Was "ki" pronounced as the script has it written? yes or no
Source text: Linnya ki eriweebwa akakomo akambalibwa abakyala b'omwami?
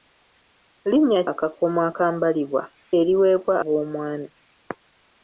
no